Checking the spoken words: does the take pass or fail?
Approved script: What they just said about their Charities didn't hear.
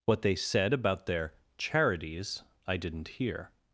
fail